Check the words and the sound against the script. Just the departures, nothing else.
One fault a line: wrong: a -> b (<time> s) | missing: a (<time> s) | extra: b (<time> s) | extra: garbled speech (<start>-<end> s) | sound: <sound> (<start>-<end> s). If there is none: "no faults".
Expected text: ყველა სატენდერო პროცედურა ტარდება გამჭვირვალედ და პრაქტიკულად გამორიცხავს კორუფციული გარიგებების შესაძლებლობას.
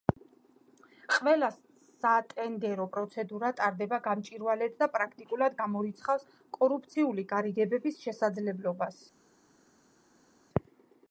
no faults